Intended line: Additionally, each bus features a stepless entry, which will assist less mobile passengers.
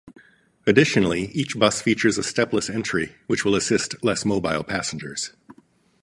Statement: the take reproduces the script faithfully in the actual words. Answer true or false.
true